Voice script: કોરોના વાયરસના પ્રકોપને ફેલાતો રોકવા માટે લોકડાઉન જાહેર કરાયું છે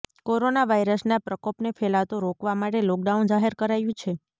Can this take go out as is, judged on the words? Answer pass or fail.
pass